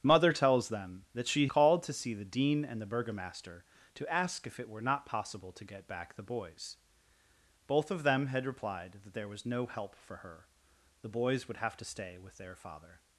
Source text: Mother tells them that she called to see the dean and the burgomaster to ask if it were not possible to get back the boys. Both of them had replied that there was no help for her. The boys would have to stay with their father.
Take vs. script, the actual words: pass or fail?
pass